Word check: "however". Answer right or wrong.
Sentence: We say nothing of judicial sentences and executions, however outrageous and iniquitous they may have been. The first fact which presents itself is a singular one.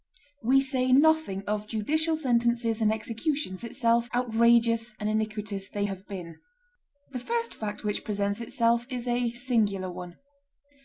wrong